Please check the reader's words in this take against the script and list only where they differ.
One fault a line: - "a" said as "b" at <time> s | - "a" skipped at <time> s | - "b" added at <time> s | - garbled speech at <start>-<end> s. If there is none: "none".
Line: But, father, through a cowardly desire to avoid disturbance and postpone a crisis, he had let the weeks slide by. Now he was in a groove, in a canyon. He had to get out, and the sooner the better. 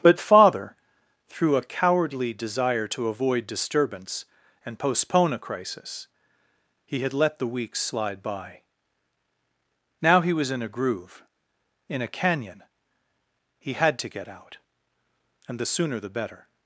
none